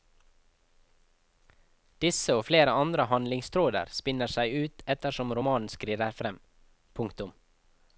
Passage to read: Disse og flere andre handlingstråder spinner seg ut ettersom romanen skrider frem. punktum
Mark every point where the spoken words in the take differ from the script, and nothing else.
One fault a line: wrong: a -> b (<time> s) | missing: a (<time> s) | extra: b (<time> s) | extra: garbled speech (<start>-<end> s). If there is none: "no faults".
no faults